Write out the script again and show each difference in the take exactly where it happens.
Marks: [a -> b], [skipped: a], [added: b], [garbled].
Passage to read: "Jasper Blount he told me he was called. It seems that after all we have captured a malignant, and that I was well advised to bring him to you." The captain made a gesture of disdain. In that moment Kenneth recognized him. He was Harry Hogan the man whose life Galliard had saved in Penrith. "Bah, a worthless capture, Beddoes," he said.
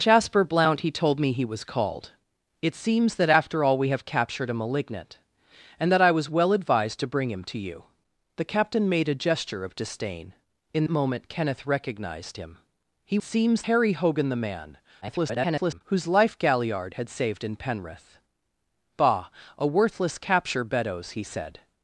"Jasper Blount he told me he was called. It seems that after all we have captured a malignant, and that I was well advised to bring him to you." The captain made a gesture of disdain. In [skipped: that] moment Kenneth recognized him. He [was -> seems] Harry Hogan the man [garbled] whose life Galliard had saved in Penrith. "Bah, a worthless capture, Beddoes," he said.